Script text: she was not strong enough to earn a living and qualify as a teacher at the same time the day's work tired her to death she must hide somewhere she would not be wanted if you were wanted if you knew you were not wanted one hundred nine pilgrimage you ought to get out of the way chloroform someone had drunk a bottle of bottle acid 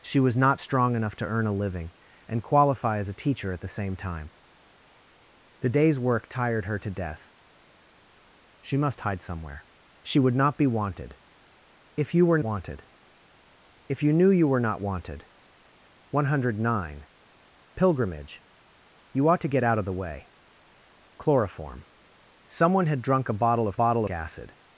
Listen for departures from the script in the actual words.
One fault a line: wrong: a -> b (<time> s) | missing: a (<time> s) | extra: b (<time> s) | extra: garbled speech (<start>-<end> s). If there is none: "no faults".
no faults